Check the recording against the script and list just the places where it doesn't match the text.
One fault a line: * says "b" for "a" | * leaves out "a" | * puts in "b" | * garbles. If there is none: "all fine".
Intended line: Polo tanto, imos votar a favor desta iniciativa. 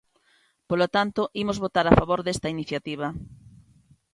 all fine